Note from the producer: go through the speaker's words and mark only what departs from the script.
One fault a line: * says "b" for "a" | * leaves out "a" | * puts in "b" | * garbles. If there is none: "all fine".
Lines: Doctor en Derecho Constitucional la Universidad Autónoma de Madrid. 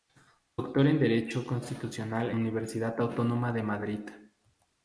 all fine